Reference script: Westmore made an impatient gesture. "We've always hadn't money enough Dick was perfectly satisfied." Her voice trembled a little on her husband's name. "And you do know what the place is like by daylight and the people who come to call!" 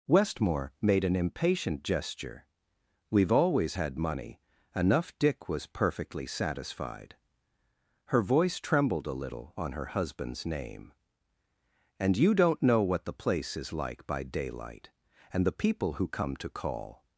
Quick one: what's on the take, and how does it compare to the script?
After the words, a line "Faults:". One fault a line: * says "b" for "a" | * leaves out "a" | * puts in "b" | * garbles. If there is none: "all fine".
Westmore made an impatient gesture. "We've always had money enough Dick was perfectly satisfied." Her voice trembled a little on her husband's name. "And you don't know what the place is like by daylight and the people who come to call!"
Faults:
* says "had" for "hadn't"
* says "don't" for "do"